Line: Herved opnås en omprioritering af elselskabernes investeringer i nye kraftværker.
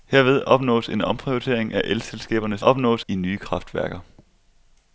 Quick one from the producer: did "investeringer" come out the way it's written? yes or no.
no